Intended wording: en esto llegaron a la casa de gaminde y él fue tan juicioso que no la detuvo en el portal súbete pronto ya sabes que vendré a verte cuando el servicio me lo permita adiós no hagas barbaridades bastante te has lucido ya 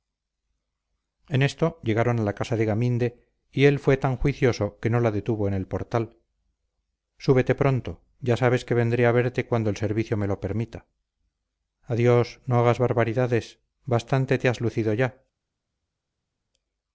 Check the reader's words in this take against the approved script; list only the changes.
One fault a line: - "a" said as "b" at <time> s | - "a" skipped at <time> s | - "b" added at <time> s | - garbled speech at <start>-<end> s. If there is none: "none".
none